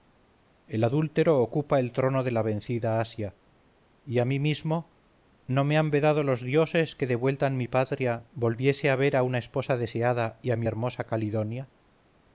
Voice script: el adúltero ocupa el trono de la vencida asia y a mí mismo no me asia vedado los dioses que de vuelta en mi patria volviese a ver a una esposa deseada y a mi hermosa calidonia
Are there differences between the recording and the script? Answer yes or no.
yes